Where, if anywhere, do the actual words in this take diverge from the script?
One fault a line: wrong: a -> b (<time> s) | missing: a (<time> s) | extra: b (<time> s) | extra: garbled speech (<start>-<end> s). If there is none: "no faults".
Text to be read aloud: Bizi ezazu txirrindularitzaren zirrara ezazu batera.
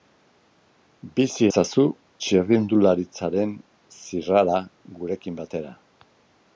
wrong: ezazu -> gurekin (5.0 s)